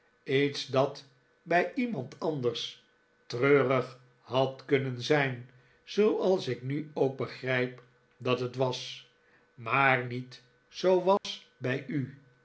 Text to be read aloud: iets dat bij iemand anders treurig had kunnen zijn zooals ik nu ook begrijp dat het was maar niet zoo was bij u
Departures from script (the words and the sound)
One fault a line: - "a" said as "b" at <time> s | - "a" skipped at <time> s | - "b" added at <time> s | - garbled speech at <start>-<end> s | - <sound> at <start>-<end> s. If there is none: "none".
- dropout at 11.2-11.2 s